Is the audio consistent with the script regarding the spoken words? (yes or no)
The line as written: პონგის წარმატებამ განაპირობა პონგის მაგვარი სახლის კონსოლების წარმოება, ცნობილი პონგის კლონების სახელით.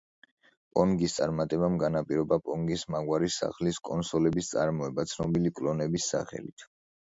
no